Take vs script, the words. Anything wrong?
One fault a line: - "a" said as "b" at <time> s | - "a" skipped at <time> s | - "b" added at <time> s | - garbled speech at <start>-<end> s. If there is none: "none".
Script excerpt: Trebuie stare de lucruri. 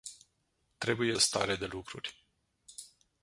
none